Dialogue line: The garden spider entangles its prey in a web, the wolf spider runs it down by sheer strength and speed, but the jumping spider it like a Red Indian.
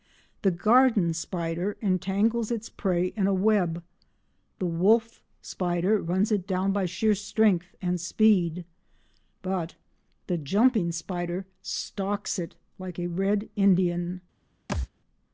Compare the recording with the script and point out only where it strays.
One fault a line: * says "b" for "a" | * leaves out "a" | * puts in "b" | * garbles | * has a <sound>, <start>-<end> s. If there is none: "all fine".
* puts in "stalks"
* has a thud, 14.7-14.9 s